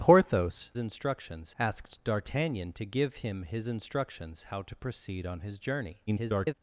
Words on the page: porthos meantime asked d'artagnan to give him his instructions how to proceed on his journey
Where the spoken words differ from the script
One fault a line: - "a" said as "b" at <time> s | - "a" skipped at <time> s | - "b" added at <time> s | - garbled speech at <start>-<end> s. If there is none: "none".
- "meantime" said as "instructions" at 0.8 s
- garbled speech at 6.1-6.5 s